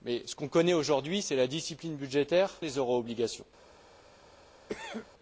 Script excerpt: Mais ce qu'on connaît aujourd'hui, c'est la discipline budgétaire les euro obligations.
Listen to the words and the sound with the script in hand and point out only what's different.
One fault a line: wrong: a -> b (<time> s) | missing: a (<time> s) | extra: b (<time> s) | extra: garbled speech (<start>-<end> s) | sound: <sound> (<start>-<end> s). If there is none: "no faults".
sound: cough (4.7-5.1 s)